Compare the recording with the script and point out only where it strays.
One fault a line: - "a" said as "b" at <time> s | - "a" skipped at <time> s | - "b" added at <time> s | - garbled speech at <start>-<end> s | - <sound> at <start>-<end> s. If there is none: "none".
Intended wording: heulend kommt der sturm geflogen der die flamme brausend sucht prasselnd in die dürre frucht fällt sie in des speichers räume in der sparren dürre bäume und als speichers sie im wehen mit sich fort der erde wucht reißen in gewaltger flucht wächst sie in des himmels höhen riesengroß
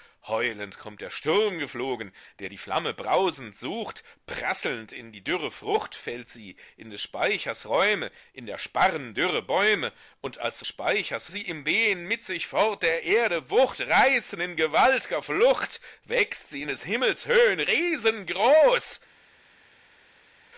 none